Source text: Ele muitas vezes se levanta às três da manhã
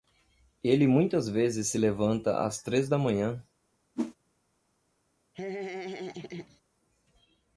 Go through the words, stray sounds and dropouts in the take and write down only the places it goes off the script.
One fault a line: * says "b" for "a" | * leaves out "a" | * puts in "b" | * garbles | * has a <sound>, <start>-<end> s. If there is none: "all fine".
* has a whoosh, 3.9-4.1 s
* has a laugh, 5.3-6.6 s